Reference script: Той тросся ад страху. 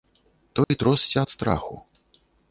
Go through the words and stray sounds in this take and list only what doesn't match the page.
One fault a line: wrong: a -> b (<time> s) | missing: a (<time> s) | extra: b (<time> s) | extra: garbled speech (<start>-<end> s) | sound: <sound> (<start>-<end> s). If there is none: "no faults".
sound: dropout (0.6-0.7 s)